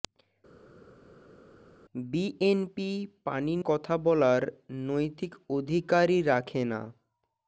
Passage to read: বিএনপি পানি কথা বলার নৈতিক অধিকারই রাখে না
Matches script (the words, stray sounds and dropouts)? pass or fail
pass